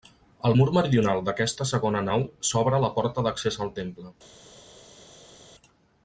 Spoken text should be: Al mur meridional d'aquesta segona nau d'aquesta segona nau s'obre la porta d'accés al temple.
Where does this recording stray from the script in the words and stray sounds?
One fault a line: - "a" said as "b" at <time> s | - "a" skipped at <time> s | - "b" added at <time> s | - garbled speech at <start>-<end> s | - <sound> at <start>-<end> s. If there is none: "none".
- "d'aquesta segona nau" skipped at 2.3 s